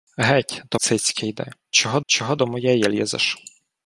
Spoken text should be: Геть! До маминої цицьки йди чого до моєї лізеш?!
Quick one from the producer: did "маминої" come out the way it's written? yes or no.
no